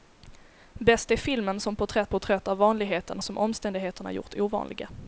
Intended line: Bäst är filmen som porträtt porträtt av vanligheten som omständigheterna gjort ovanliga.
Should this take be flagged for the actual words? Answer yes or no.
no